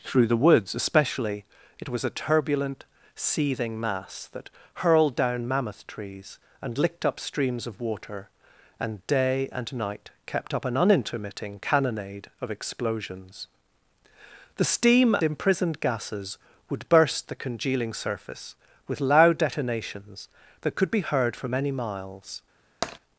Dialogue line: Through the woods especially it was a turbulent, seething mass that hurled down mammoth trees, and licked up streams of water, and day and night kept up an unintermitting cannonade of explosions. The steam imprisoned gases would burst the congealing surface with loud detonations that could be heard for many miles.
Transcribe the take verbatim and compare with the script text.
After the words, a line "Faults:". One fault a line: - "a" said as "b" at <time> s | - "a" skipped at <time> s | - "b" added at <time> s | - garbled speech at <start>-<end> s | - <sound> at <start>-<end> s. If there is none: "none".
Through the woods especially it was a turbulent, seething mass that hurled down mammoth trees, and licked up streams of water, and day and night kept up an unintermitting cannonade of explosions. The steam imprisoned gases would burst the congealing surface with loud detonations that could be heard for many miles.
Faults:
- tap at 22.8-23.0 s